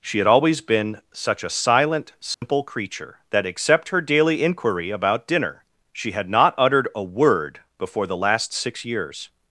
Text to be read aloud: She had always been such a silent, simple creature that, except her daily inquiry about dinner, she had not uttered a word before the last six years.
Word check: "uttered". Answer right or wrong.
right